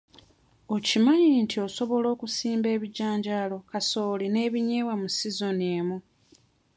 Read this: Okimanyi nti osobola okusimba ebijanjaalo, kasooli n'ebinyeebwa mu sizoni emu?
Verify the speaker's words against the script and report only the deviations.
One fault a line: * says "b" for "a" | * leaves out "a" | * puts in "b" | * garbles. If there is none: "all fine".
all fine